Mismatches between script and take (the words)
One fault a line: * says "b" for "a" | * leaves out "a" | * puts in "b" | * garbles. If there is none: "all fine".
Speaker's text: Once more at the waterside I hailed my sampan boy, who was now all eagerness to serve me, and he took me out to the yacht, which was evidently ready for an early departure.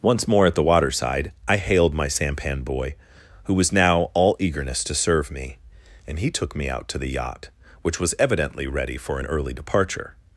all fine